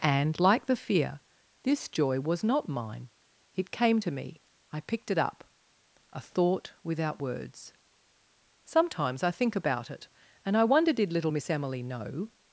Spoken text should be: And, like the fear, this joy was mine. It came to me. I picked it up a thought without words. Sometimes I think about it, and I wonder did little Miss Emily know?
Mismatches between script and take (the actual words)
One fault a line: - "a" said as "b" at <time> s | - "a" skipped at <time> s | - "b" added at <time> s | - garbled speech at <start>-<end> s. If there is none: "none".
- "not" added at 2.4 s